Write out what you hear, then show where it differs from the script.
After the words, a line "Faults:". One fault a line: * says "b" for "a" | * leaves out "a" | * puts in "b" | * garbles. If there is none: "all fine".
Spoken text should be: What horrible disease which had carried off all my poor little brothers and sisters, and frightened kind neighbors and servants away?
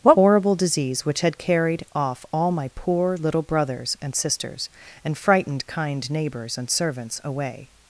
What horrible disease which had carried off all my poor little brothers and sisters, and frightened kind neighbors and servants away?
Faults:
all fine